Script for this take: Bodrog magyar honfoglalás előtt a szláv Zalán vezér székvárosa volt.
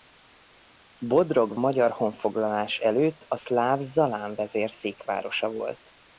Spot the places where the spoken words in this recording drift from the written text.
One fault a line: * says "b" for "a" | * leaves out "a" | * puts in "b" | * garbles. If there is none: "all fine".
all fine